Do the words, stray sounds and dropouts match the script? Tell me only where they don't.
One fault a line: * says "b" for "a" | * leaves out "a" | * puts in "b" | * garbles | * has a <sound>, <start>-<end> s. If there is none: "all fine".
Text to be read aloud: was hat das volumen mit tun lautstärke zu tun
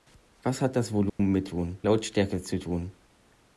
* has a dropout, 1.1-1.2 s